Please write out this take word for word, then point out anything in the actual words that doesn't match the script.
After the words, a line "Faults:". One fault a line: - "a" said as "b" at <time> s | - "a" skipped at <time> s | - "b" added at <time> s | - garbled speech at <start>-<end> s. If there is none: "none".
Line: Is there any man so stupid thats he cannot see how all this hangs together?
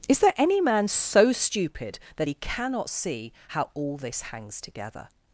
Is there any man so stupid that he cannot see how all this hangs together?
Faults:
- "thats" said as "that" at 2.2 s